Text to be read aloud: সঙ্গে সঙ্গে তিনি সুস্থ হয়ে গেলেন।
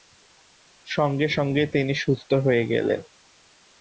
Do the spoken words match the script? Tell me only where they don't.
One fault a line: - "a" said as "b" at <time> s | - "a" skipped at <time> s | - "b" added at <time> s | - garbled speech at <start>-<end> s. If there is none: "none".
none